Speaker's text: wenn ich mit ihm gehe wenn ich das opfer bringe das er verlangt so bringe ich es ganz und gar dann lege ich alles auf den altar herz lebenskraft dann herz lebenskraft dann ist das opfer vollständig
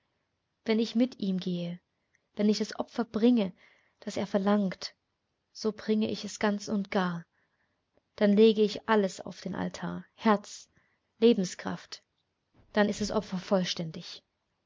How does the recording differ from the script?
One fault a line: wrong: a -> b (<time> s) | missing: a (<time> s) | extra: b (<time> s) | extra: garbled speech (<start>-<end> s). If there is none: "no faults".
missing: herz lebenskraft dann (12.9 s)